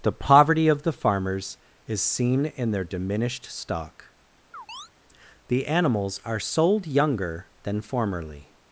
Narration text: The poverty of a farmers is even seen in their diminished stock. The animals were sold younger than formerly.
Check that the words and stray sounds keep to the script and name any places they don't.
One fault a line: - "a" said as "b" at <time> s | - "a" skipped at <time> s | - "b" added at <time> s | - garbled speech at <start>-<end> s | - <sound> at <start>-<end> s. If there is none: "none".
- "a" said as "the" at 0.8 s
- "even" skipped at 2.0 s
- chirp at 4.5-4.9 s
- "were" said as "are" at 6.3 s